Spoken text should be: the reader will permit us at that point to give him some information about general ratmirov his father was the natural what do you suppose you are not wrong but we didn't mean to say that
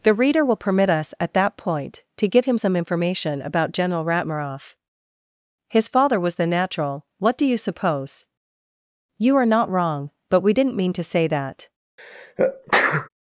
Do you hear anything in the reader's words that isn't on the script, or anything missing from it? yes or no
no